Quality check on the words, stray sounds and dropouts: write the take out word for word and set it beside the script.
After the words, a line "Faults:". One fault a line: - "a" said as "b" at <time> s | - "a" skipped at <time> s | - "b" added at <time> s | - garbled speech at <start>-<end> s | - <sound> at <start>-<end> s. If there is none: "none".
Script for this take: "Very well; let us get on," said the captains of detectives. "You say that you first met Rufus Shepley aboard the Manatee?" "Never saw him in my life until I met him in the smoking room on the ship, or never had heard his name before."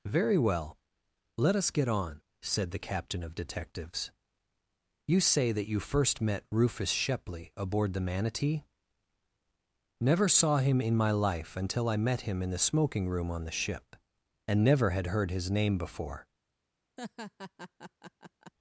"Very well; let us get on," said the captain of detectives. "You say that you first met Rufus Shepley aboard the Manatee?" "Never saw him in my life until I met him in the smoking room on the ship, and never had heard his name before."
Faults:
- "captains" said as "captain" at 2.8 s
- "or" said as "and" at 14.5 s
- laugh at 17.0-18.5 s